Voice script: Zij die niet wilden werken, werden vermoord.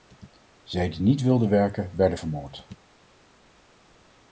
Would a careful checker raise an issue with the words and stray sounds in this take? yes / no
no